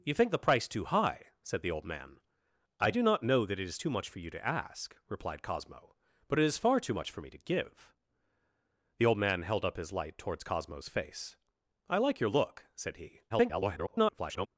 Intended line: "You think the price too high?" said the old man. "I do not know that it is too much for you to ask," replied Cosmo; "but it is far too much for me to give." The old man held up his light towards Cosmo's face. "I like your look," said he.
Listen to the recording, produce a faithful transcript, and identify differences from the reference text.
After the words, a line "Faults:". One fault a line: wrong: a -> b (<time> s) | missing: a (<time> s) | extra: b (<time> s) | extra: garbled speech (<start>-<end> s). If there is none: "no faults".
"You think the price too high?" said the old man. "I do not know that it is too much for you to ask," replied Cosmo; "but it is far too much for me to give." The old man held up his light towards Cosmo's face. "I like your look," said he. [garbled]
Faults:
extra: garbled speech (13.3-14.5 s)